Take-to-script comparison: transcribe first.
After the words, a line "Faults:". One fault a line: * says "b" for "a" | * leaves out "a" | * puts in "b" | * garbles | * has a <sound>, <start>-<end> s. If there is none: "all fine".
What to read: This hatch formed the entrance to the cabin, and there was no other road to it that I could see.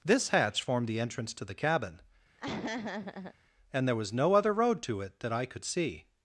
This hatch formed the entrance to the cabin, and there was no other road to it that I could see.
Faults:
* has a laugh, 2.4-3.3 s